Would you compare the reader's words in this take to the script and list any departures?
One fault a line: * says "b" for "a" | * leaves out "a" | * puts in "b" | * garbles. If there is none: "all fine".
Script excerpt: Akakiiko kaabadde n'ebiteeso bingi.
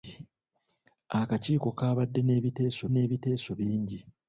* puts in "n'ebiteeso"